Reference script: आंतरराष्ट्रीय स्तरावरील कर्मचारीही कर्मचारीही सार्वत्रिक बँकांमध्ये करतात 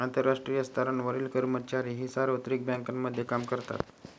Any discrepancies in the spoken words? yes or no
yes